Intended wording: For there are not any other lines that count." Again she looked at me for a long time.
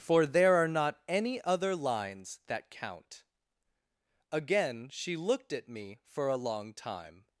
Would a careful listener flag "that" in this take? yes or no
no